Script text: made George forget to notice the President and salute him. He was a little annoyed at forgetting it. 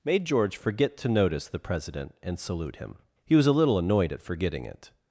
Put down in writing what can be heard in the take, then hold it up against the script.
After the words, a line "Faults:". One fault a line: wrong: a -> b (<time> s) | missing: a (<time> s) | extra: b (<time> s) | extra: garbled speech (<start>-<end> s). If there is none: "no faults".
made George forget to notice the President and salute him. He was a little annoyed at forgetting it.
Faults:
no faults